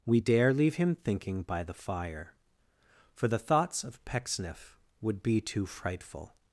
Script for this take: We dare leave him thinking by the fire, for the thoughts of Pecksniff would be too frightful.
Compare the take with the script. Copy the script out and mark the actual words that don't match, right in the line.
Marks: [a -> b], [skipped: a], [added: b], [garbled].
We dare leave him thinking by the fire, for the thoughts of Pecksniff would be too frightful.